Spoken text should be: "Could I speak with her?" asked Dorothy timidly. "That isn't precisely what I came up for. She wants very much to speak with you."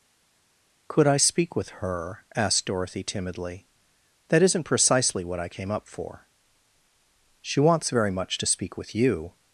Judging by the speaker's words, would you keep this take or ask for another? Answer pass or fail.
pass